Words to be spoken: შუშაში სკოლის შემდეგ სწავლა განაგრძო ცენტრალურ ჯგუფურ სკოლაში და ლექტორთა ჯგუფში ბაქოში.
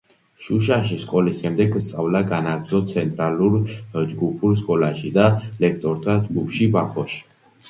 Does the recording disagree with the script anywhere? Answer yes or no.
no